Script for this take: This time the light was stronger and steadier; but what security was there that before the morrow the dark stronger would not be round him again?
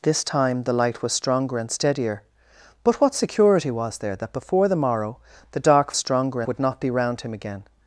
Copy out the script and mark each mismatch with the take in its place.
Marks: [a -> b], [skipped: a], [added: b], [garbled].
This time the light was stronger and steadier; but what security was there that before the morrow the dark stronger would not be round him again?